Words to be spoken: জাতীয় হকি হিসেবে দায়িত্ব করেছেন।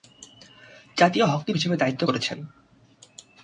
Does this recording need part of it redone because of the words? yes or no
no